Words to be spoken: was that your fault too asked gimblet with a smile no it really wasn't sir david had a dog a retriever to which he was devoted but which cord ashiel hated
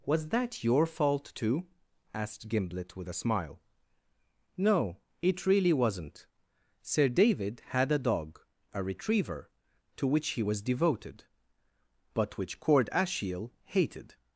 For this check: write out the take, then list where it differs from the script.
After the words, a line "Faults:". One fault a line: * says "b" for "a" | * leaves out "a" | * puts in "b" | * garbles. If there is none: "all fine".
was that your fault too asked gimblet with a smile no it really wasn't sir david had a dog a retriever to which he was devoted but which cord ashiel hated
Faults:
all fine